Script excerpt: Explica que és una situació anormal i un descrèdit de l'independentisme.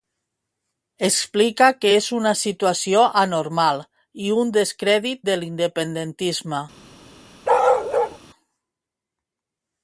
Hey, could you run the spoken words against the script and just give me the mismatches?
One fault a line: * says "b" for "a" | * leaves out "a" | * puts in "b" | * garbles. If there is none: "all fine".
all fine